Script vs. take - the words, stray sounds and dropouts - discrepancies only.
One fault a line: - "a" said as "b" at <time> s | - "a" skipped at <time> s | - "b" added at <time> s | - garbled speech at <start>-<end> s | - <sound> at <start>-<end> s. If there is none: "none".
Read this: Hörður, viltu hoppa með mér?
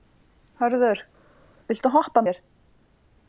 - "með" skipped at 2.3 s